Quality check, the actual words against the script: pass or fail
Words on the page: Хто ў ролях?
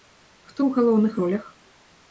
fail